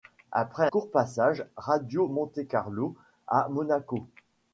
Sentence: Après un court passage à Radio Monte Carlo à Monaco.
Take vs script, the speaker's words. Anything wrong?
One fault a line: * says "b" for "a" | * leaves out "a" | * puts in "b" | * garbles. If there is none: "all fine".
* leaves out "un"
* leaves out "à"